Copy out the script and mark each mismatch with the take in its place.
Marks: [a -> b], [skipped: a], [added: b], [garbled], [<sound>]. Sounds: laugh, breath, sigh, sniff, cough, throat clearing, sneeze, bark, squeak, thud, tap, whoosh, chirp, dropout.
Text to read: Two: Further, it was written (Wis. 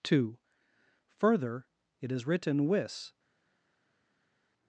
Two: Further, it [was -> is] written (Wis.